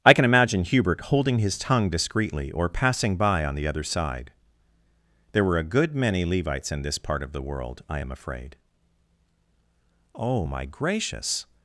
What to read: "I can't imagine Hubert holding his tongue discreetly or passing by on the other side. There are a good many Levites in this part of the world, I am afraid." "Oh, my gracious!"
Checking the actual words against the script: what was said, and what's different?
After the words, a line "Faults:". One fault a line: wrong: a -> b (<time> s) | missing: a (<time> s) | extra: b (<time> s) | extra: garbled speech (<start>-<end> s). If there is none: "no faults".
"I can imagine Hubert holding his tongue discreetly or passing by on the other side. There were a good many Levites in this part of the world, I am afraid." "Oh, my gracious!"
Faults:
wrong: can't -> can (0.1 s)
wrong: are -> were (5.4 s)